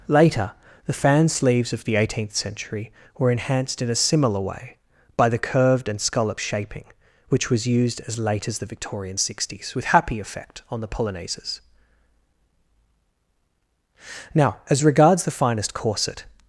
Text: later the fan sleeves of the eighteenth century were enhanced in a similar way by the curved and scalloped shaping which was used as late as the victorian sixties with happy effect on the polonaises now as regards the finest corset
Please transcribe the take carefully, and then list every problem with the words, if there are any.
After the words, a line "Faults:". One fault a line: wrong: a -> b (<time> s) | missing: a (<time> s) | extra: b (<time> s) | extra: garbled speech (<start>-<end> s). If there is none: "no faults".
later the fan sleeves of the eighteenth century were enhanced in a similar way by the curved and scalloped shaping which was used as late as the victorian sixties with happy effect on the polonaises now as regards the finest corset
Faults:
no faults